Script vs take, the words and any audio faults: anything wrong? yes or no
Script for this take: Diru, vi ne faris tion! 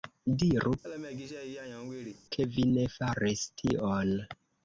yes